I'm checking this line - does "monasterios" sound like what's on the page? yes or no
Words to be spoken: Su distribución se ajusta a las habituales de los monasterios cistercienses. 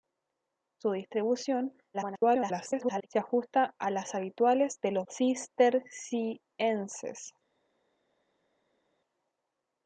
no